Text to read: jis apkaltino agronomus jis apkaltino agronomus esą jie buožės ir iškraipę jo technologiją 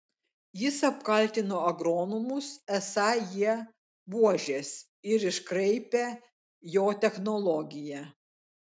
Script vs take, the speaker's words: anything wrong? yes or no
yes